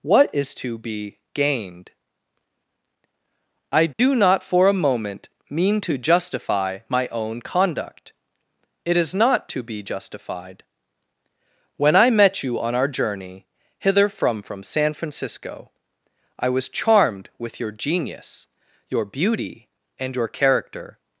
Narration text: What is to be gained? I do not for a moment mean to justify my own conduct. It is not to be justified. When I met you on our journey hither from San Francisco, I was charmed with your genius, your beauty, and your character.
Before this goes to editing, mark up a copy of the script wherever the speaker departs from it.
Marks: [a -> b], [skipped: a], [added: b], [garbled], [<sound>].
What is to be gained? I do [dropout] not for a moment mean to justify my own conduct. It is not to be justified. When I met you on our journey hither from [added: from] San Francisco, I was charmed with your genius, your beauty, and your character.